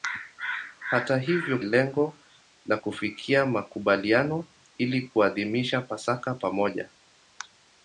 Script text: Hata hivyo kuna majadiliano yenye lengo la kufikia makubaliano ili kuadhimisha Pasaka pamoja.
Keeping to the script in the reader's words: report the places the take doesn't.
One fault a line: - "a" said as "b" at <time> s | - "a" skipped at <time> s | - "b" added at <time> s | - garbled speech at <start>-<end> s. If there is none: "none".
- "kuna majadiliano yenye" skipped at 1.6 s